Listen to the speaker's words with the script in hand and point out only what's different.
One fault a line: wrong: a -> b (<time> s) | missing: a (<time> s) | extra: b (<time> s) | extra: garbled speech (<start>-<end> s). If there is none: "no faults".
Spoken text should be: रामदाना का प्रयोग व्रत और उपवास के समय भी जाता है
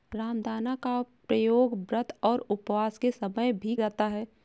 no faults